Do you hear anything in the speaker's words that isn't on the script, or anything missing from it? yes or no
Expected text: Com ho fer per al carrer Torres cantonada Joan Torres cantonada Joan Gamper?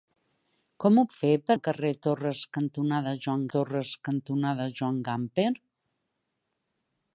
no